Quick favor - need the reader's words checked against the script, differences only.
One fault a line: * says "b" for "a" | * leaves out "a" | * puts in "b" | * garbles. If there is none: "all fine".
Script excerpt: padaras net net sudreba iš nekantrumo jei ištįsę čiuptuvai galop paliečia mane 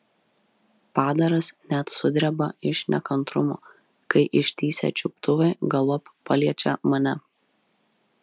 * leaves out "net"
* says "kai" for "jei"